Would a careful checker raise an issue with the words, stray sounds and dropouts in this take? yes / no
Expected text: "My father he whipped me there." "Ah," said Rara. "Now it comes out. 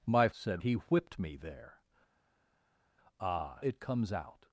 yes